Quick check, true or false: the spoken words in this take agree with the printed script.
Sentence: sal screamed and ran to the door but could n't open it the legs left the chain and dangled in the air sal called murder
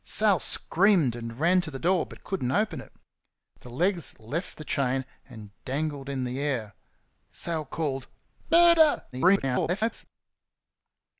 false